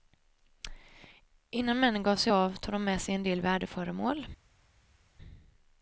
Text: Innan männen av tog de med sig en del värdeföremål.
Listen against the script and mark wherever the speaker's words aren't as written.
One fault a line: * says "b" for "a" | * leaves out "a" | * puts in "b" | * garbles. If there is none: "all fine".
* puts in "gav sig"